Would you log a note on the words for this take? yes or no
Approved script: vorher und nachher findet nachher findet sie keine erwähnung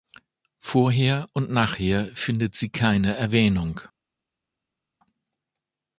yes